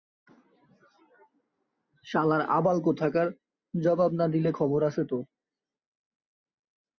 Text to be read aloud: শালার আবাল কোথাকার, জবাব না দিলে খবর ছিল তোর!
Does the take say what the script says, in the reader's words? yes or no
no